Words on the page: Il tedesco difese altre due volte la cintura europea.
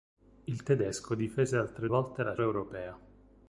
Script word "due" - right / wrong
wrong